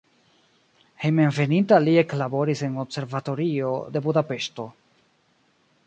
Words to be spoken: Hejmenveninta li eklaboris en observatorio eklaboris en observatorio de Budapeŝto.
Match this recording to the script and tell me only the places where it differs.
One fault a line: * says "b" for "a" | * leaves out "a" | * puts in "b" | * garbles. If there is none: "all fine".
* leaves out "eklaboris en observatorio"